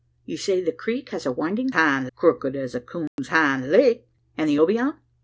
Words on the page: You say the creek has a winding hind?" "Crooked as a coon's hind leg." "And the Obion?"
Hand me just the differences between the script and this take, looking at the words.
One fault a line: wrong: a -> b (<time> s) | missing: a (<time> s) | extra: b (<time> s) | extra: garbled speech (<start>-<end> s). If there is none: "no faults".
no faults